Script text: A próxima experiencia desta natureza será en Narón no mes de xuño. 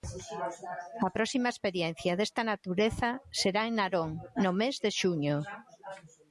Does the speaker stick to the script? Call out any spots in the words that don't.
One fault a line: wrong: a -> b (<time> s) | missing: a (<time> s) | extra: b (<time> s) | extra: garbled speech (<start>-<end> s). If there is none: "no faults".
no faults